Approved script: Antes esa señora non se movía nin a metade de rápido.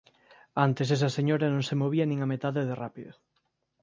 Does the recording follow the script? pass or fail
pass